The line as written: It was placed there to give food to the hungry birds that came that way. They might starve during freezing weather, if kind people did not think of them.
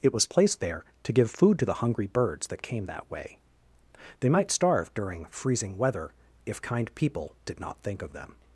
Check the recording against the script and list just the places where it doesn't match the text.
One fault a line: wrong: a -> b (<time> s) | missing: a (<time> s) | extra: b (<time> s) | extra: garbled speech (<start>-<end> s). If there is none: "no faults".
no faults